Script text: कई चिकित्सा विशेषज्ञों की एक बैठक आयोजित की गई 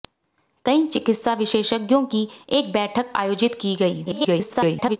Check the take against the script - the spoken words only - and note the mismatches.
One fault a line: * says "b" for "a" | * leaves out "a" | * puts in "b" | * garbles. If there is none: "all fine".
* garbles